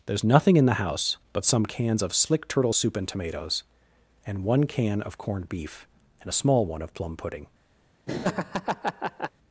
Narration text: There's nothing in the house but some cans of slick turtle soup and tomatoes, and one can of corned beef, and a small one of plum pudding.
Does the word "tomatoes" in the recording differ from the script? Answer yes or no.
no